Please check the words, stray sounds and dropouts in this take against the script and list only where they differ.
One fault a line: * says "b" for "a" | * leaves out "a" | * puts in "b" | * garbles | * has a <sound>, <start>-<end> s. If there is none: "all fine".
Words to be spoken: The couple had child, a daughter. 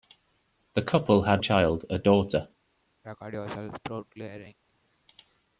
* has a throat clearing, 3.0-4.6 s